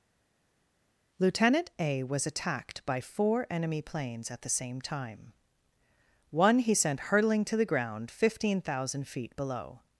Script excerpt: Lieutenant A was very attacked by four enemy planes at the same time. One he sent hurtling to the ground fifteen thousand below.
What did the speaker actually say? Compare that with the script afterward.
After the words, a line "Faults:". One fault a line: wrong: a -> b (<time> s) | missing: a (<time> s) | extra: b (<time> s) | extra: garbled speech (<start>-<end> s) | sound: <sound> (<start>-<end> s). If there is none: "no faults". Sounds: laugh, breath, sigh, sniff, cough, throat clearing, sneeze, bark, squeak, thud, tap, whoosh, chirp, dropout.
Lieutenant A was attacked by four enemy planes at the same time. One he sent hurtling to the ground fifteen thousand feet below.
Faults:
missing: very (2.3 s)
extra: feet (9.1 s)